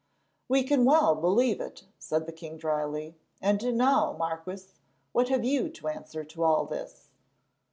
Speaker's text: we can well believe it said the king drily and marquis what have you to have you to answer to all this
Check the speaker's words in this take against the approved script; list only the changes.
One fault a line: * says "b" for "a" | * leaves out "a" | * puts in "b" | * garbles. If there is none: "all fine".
* puts in "now"
* leaves out "have you to"